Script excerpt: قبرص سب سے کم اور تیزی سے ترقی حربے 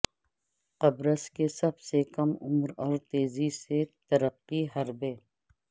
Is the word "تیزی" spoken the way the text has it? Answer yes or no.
yes